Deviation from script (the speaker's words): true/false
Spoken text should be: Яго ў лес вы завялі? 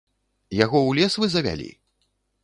false